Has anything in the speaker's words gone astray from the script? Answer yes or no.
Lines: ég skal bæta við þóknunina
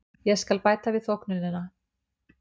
no